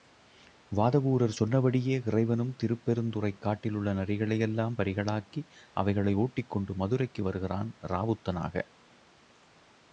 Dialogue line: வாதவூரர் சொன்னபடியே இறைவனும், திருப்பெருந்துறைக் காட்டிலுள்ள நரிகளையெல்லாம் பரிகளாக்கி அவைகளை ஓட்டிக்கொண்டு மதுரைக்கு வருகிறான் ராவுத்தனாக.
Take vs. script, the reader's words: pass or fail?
pass